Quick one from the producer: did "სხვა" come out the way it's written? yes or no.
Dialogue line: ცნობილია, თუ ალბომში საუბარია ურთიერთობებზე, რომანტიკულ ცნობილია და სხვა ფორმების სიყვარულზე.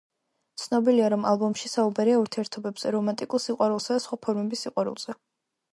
yes